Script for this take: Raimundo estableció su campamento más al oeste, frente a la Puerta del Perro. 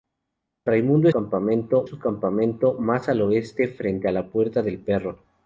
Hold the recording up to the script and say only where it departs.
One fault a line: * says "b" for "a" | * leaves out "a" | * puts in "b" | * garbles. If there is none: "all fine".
* says "campamento" for "estableció"